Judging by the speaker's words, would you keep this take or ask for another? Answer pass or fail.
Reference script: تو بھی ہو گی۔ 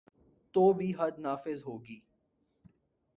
fail